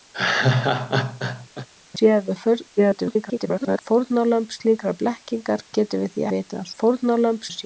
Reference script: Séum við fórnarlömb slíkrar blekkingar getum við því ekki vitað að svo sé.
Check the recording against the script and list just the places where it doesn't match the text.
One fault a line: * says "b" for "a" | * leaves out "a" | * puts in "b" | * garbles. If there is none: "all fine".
* garbles
* leaves out "ekki"
* says "fórnarlömb" for "svo"